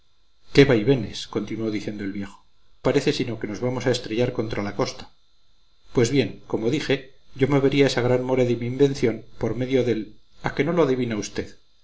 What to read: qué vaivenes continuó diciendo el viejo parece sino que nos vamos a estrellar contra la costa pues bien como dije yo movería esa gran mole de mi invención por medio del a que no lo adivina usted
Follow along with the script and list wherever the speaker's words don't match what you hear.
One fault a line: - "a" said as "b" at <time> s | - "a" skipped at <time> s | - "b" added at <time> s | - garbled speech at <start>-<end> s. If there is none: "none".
none